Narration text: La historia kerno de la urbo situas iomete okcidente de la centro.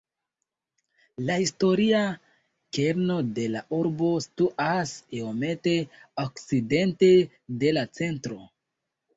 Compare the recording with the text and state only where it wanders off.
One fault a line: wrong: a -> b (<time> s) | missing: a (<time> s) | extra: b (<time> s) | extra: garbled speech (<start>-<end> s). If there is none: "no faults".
no faults